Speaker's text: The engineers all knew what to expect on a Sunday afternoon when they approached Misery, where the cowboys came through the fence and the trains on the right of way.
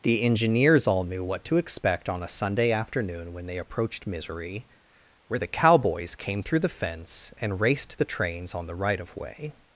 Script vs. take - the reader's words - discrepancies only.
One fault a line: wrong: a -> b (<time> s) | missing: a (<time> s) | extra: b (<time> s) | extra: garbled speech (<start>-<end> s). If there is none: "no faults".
extra: raced (7.6 s)